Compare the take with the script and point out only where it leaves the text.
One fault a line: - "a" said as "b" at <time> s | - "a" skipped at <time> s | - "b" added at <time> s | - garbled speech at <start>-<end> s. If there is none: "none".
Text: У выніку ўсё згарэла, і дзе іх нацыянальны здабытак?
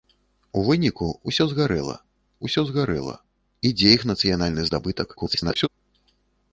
- "ўсё згарэла" added at 2.5 s
- garbled speech at 5.2-5.7 s